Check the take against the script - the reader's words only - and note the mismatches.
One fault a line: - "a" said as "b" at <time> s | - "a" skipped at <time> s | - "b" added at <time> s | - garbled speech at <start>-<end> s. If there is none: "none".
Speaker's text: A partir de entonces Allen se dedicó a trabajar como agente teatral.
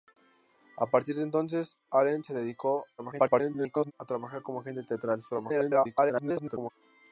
- garbled speech at 3.0-3.9 s
- garbled speech at 5.3-6.7 s